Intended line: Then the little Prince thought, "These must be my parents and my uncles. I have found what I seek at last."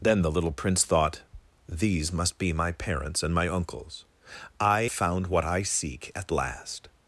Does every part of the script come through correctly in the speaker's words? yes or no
no